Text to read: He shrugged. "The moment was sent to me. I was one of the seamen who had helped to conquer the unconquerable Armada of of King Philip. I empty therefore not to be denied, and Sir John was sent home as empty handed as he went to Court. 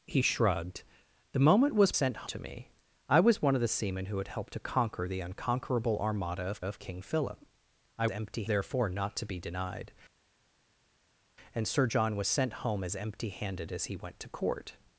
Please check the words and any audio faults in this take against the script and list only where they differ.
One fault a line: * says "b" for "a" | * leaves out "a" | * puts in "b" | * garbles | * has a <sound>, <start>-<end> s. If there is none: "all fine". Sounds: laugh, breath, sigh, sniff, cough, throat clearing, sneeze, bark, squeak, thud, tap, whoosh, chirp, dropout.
all fine